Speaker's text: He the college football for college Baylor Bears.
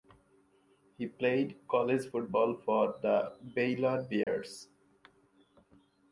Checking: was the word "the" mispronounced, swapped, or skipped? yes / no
yes